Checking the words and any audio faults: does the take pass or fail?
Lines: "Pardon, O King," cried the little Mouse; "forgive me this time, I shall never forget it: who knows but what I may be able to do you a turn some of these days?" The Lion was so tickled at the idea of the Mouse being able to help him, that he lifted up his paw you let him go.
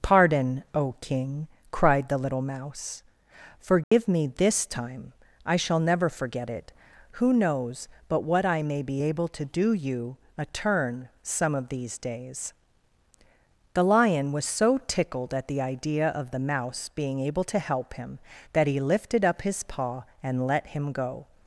fail